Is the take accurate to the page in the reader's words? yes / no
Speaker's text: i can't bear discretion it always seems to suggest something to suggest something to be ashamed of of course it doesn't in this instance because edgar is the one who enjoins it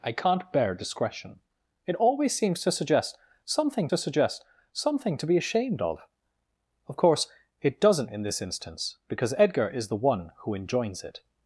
yes